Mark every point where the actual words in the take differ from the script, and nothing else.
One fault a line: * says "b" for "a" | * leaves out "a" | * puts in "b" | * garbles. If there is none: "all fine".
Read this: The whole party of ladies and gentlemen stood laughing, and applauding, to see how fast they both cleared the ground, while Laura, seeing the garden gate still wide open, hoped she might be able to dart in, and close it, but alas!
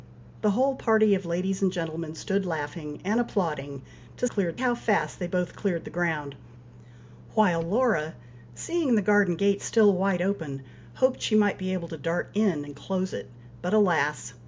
* says "cleared" for "see"